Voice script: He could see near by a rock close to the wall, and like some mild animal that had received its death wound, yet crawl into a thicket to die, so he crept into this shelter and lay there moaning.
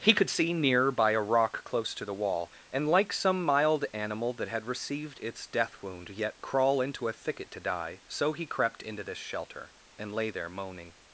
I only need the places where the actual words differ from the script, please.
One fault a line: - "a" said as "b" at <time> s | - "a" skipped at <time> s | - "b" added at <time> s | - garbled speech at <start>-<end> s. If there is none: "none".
none